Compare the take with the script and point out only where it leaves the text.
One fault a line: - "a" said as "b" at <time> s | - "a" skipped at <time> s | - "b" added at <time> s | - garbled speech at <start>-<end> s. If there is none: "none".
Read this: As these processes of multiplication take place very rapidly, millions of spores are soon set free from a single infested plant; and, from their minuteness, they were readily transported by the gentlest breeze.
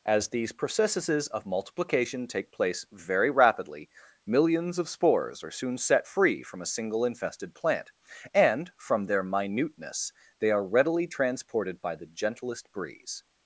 - "were" said as "are" at 10.5 s